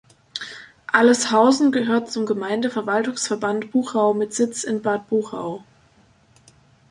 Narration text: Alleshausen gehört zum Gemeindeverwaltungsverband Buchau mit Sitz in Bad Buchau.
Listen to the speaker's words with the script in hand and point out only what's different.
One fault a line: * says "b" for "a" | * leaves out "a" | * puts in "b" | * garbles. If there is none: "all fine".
all fine